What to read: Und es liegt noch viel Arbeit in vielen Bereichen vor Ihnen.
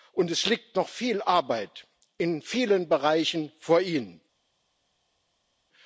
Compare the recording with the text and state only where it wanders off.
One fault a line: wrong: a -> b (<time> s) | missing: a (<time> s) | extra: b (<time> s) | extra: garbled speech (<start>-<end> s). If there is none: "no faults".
no faults